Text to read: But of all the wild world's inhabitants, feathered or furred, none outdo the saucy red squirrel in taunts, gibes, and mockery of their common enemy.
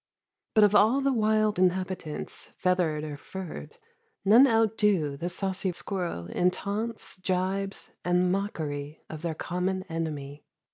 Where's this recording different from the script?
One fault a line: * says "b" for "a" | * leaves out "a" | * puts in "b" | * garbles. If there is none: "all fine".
* leaves out "world's"
* leaves out "red"